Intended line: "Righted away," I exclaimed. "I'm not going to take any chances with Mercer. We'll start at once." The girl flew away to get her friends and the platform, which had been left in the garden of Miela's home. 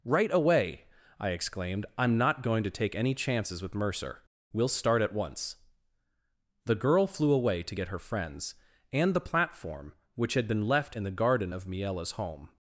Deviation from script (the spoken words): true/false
true